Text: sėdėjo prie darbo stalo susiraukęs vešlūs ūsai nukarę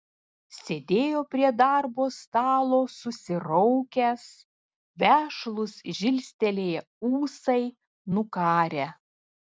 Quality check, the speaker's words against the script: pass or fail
fail